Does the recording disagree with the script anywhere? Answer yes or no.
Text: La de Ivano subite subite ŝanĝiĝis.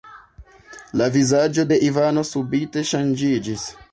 yes